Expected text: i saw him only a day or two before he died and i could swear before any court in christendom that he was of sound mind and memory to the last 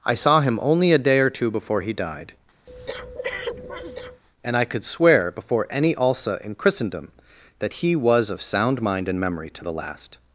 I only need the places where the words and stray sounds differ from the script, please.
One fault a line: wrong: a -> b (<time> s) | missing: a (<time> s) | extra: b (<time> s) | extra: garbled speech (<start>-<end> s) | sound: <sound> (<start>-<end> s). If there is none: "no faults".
sound: breath (2.7-4.2 s)
wrong: court -> alsa (5.9 s)